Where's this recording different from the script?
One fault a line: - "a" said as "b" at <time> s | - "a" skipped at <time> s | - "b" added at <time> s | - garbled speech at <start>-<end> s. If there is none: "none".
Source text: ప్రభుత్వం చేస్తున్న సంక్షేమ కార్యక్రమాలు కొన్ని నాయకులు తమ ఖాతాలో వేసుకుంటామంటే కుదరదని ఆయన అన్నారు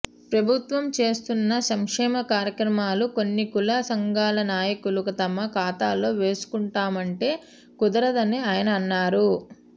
- "కుల సంఘాల" added at 3.5 s